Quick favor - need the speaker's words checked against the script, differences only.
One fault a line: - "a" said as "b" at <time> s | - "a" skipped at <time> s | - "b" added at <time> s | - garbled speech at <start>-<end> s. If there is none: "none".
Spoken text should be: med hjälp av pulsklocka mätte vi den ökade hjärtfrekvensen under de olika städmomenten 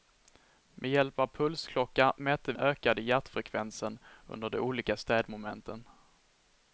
- "vi den" skipped at 2.5 s